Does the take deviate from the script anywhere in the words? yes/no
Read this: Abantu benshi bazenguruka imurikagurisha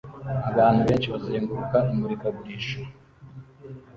no